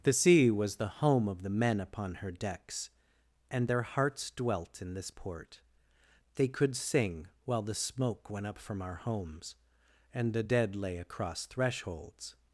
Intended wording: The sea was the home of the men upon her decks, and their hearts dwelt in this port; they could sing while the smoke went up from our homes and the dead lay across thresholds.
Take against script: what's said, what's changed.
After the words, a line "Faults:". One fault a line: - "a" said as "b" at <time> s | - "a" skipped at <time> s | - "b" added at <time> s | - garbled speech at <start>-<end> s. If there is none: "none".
The sea was the home of the men upon her decks, and their hearts dwelt in this port; they could sing while the smoke went up from our homes and the dead lay across thresholds.
Faults:
none